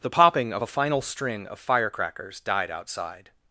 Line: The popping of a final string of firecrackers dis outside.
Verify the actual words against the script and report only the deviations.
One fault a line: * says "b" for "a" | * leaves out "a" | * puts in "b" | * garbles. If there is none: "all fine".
* says "died" for "dis"